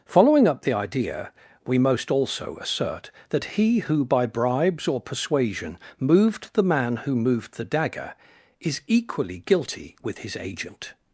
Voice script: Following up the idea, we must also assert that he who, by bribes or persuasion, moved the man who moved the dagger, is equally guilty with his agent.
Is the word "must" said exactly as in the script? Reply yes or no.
no